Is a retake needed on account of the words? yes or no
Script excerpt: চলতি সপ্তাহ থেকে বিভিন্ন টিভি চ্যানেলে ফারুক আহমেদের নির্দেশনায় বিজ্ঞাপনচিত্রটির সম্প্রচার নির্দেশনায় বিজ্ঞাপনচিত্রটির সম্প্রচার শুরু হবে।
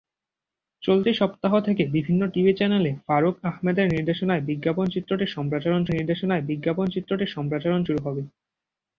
no